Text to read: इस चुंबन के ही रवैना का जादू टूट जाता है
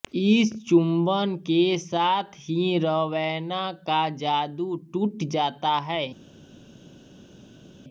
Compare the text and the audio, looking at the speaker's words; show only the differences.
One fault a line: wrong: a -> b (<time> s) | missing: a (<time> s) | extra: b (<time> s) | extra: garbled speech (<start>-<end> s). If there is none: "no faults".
extra: साथ (1.8 s)